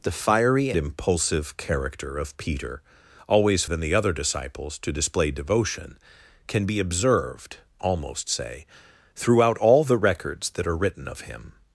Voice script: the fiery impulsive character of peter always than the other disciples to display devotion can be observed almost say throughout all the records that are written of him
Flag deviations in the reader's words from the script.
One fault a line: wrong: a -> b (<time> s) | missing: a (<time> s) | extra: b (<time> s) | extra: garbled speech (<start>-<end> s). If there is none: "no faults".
no faults